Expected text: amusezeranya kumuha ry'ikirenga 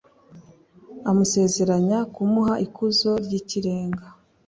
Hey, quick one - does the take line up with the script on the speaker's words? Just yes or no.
no